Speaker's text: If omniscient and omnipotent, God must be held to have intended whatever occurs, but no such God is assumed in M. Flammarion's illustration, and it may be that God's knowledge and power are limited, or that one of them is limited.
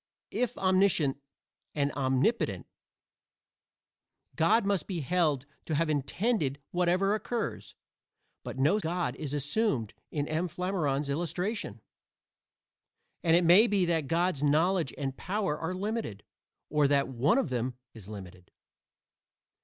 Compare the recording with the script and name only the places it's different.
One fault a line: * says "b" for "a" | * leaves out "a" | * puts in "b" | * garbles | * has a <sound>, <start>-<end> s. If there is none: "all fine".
* leaves out "such"